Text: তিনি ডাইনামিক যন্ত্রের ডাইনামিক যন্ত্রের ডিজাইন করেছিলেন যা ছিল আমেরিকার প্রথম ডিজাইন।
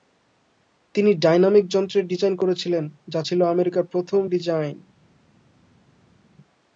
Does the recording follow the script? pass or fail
fail